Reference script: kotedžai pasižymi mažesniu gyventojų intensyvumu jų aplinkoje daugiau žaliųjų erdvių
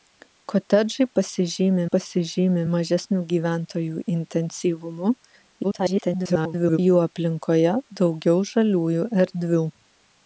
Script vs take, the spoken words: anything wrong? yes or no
yes